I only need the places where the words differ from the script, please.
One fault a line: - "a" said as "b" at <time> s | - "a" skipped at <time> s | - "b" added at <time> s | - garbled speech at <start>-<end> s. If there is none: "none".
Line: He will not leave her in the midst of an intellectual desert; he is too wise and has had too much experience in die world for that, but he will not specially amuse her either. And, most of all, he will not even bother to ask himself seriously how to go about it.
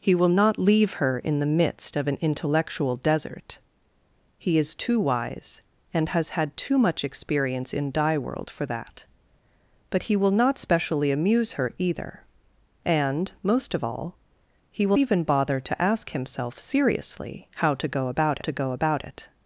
- "not" skipped at 15.0 s
- "to go about" added at 18.4 s